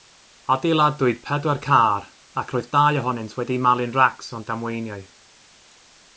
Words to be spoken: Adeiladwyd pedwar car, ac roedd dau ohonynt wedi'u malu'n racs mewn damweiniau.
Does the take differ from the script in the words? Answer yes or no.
no